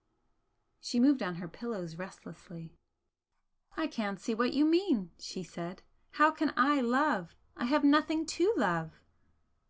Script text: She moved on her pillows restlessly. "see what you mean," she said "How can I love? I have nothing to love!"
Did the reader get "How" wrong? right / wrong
right